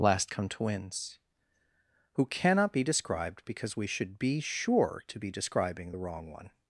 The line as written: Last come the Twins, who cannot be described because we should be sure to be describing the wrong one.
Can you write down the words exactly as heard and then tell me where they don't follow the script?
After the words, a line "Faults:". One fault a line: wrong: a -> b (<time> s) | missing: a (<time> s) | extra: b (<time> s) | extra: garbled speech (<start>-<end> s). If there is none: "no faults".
Last come Twins, who cannot be described because we should be sure to be describing the wrong one.
Faults:
missing: the (0.5 s)